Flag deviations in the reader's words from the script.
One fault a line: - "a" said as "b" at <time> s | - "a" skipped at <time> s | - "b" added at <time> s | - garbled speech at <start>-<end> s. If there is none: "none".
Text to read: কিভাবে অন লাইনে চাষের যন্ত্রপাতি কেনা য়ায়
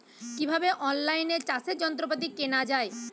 none